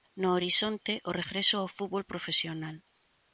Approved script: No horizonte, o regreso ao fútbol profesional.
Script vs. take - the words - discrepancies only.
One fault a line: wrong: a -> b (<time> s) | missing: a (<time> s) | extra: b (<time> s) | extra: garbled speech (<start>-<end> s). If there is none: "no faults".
no faults